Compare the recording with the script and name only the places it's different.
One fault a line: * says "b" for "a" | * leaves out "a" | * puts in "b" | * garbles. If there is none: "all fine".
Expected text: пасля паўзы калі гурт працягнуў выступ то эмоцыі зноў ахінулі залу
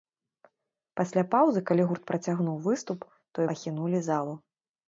* leaves out "эмоцыі зноў"